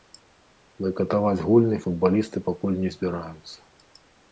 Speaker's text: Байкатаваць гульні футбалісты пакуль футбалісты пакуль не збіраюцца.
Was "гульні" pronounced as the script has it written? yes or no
yes